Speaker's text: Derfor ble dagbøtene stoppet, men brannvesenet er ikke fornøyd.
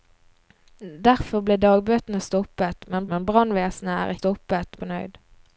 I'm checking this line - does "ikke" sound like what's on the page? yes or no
no